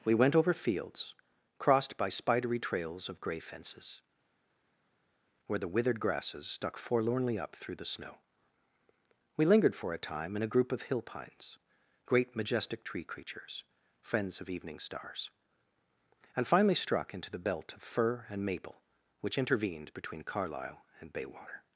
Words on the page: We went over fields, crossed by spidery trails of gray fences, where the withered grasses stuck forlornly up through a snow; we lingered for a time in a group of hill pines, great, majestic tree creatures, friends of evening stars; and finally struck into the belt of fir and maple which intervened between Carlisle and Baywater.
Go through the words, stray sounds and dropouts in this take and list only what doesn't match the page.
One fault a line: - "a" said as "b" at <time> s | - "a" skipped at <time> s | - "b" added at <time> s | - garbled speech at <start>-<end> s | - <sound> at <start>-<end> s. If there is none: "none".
- "a" said as "the" at 7.8 s